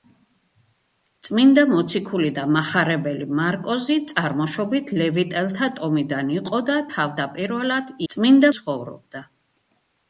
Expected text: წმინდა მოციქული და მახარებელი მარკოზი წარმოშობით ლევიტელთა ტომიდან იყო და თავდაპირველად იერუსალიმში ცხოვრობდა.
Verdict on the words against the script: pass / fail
fail